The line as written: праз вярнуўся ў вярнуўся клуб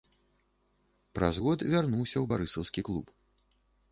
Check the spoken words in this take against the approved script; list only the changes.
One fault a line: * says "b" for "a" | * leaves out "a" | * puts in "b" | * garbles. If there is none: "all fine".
* puts in "год"
* says "барысаўскі" for "вярнуўся"